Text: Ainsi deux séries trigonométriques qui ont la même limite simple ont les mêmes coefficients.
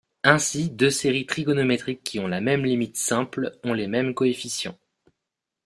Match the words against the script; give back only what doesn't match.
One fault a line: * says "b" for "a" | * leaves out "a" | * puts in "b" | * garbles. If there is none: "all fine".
all fine